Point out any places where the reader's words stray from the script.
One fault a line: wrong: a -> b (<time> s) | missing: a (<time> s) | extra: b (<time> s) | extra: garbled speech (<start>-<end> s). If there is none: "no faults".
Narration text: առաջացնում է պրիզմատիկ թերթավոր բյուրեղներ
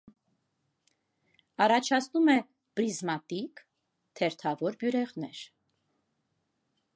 no faults